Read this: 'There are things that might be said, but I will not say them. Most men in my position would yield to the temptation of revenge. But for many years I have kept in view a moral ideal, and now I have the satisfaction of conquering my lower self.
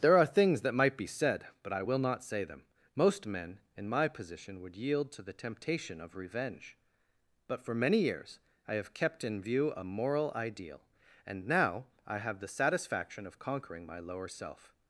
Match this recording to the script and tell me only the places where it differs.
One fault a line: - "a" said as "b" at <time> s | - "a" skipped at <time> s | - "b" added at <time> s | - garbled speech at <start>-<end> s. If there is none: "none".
none